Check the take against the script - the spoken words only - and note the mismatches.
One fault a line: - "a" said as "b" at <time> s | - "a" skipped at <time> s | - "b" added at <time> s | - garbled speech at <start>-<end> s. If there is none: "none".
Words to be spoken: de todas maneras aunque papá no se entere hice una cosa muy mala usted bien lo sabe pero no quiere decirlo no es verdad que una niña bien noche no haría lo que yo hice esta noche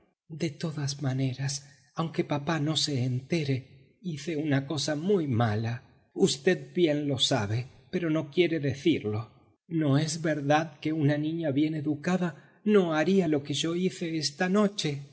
- "noche" said as "educada" at 11.8 s